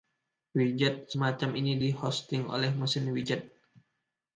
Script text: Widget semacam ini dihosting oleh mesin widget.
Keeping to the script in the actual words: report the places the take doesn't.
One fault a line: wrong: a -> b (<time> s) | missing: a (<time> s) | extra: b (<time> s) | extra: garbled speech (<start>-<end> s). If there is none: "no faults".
no faults